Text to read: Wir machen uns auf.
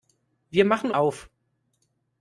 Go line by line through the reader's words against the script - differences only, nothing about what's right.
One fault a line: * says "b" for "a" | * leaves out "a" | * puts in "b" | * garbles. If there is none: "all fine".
* leaves out "uns"